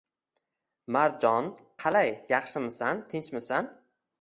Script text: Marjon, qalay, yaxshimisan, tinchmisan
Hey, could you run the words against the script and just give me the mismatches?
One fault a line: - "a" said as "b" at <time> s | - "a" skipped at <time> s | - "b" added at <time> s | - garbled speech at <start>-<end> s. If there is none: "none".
none